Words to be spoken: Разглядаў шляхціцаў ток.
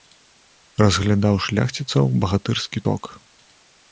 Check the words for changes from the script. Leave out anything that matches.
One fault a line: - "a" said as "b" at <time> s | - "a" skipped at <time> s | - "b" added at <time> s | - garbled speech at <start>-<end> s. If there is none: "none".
- "багатырскі" added at 2.2 s